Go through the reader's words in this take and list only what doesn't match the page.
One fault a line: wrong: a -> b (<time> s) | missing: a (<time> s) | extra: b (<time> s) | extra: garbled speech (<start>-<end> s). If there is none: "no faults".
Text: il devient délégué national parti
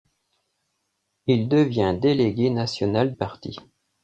no faults